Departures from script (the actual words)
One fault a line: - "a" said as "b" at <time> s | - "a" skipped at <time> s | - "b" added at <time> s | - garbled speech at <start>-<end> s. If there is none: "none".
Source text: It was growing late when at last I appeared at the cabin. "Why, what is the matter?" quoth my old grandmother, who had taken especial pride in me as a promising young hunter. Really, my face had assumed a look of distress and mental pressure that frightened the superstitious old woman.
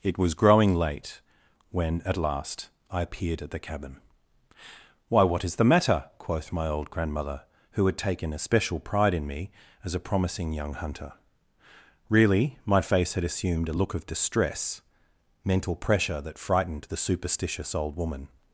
- "and" skipped at 14.8 s